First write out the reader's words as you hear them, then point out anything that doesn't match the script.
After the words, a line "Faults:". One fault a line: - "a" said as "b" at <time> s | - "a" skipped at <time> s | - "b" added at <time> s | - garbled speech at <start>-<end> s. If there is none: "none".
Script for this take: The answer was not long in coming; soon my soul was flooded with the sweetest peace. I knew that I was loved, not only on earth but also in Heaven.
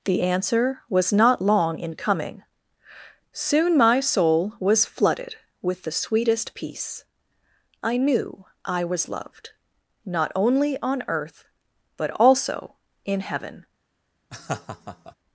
The answer was not long in coming; soon my soul was flooded with the sweetest peace. I knew I was loved, not only on earth but also in Heaven.
Faults:
- "that" skipped at 8.5 s